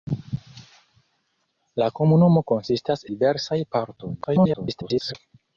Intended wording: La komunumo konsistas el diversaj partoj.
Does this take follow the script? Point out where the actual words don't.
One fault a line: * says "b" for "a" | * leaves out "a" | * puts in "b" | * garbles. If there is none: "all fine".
* leaves out "el"
* garbles